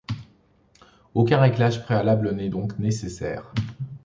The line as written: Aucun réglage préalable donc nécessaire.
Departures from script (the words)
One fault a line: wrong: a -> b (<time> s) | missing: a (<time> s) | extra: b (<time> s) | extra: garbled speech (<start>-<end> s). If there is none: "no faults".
extra: n'est (2.3 s)